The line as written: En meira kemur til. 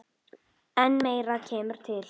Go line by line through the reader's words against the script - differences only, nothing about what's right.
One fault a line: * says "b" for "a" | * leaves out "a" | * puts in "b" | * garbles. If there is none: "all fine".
all fine